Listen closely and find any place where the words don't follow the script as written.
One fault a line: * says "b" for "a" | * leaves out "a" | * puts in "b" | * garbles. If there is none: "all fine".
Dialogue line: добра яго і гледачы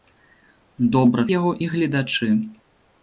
all fine